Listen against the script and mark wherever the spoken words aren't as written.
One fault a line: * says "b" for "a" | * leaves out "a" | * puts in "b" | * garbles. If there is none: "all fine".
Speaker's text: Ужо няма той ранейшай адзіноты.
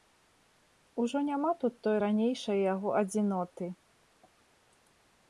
* puts in "тут"
* puts in "яго"